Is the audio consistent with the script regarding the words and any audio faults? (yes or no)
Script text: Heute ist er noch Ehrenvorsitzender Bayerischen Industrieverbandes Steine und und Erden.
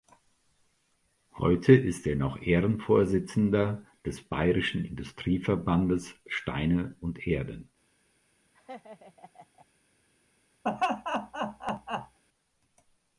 no